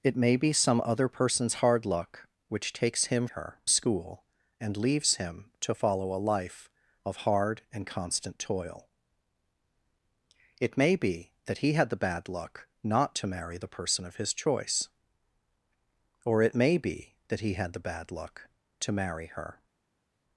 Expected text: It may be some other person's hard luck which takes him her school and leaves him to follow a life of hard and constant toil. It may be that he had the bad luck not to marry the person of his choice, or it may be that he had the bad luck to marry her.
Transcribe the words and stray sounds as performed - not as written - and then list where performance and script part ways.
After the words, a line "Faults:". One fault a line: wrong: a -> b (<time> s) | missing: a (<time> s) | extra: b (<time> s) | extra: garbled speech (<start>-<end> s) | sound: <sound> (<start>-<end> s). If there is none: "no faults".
It may be some other person's hard luck which takes him her school and leaves him to follow a life of hard and constant toil. It may be that he had the bad luck not to marry the person of his choice, or it may be that he had the bad luck to marry her.
Faults:
no faults